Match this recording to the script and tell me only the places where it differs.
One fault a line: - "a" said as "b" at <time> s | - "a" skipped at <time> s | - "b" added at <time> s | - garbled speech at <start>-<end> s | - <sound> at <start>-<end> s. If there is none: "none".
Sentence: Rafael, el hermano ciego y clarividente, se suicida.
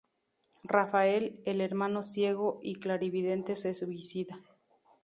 none